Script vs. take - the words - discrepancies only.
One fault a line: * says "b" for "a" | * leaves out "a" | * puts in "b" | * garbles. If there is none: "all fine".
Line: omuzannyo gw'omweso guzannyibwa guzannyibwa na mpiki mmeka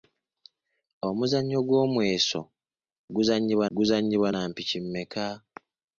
all fine